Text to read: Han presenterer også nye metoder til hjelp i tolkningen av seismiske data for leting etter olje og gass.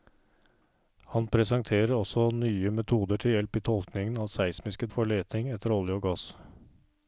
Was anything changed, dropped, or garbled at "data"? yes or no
yes